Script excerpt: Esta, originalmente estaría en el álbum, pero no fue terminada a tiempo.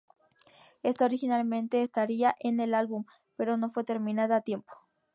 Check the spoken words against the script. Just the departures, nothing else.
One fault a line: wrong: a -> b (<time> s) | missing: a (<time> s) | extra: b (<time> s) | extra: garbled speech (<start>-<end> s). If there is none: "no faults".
no faults